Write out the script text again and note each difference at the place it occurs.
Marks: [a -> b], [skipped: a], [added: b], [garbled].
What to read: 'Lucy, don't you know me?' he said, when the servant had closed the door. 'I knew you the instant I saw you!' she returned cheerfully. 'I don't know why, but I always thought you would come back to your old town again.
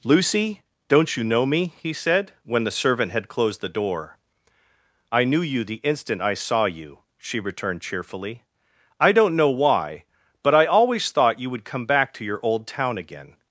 'Lucy, don't you know me?' he said, when the servant had closed the door. 'I knew you the instant I saw you!' she returned cheerfully. 'I don't know why, but I always thought you would come back to your old town again.